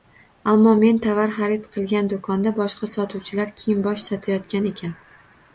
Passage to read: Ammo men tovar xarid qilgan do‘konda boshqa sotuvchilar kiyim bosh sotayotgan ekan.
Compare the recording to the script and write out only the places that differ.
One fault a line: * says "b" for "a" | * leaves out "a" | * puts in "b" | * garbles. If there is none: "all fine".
all fine